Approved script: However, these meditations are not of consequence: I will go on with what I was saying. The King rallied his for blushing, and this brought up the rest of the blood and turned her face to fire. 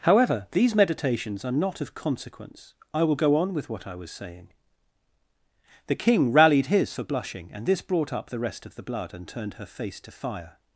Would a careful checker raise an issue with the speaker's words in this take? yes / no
no